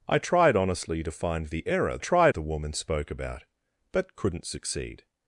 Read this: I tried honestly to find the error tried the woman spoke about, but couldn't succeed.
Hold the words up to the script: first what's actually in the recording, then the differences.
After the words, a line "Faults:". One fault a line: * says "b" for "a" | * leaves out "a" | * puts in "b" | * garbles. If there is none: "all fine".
I tried honestly to find the error tried the woman spoke about, but couldn't succeed.
Faults:
all fine